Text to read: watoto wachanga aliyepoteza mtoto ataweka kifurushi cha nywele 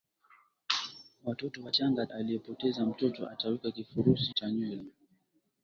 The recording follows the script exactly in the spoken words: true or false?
true